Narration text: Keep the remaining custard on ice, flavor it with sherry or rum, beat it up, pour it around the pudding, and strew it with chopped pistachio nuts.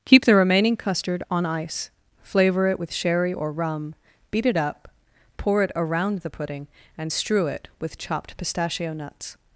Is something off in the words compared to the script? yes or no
no